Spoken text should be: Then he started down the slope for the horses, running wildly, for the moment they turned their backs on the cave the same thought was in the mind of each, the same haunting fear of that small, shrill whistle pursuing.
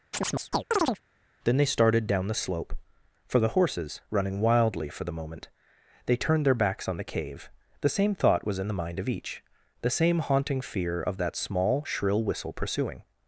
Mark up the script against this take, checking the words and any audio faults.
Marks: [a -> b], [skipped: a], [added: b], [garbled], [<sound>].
[chirp] Then [he -> they] started down the slope for the horses, running wildly, for the moment they turned their backs on the cave the same thought was in the mind of each, the same haunting fear of that small, shrill whistle pursuing.